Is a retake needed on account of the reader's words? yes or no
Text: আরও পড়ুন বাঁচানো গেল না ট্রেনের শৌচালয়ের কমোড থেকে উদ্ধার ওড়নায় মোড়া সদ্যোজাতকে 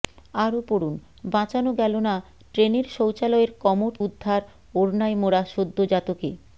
yes